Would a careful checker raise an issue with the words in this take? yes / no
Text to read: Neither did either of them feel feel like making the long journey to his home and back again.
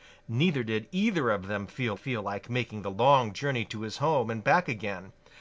no